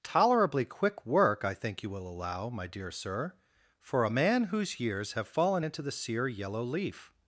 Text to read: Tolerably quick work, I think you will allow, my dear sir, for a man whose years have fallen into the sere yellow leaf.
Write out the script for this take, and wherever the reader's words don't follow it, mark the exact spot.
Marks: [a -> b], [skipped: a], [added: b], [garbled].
Tolerably quick work, I think you will allow, my dear sir, for a man whose years have fallen into the sere yellow leaf.